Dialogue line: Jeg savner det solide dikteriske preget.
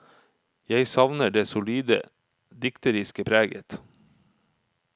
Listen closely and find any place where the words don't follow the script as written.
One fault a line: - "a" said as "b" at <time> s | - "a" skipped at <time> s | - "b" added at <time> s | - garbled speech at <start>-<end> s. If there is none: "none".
none